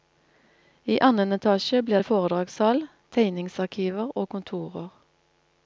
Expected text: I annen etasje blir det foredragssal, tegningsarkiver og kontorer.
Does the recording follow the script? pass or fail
pass